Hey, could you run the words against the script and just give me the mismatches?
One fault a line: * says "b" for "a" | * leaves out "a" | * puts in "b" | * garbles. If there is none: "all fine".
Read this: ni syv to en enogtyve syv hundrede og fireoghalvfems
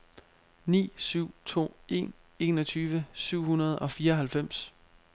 all fine